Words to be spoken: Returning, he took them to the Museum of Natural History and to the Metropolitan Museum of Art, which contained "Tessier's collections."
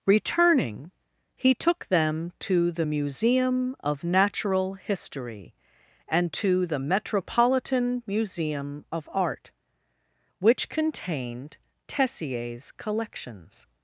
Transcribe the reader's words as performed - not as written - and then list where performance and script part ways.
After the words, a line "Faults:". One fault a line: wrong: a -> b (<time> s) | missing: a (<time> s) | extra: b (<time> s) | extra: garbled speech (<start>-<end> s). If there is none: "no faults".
Returning, he took them to the Museum of Natural History and to the Metropolitan Museum of Art, which contained "Tessier's collections."
Faults:
no faults